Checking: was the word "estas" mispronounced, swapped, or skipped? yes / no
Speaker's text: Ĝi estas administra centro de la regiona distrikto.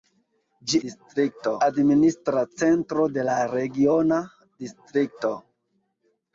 yes